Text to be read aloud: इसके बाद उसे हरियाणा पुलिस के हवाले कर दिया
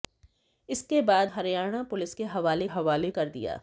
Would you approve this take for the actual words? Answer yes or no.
no